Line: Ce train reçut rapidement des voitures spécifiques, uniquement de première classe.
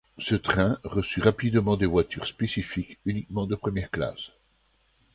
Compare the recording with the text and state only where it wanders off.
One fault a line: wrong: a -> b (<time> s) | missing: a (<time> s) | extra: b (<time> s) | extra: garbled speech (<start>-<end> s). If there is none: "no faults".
no faults